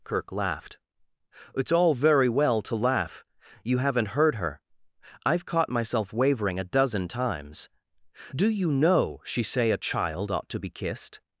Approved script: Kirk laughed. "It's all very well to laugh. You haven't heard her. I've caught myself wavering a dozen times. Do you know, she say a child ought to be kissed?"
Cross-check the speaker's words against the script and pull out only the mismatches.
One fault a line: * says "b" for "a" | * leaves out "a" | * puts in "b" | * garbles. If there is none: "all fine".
all fine